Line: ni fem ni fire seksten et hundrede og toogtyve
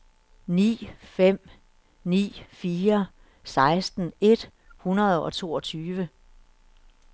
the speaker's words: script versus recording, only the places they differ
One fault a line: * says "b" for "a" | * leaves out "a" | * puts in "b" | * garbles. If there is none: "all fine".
all fine